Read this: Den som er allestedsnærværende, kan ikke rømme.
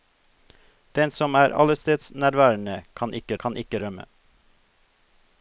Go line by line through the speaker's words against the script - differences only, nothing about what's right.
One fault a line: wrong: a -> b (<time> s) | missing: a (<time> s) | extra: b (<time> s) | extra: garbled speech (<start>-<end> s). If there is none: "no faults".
extra: kan ikke (3.4 s)